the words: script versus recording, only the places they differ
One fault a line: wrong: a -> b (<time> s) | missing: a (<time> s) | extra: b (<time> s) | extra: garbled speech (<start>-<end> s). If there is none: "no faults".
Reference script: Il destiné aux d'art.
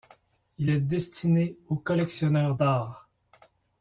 extra: est (0.7 s)
extra: collectionneurs (1.7 s)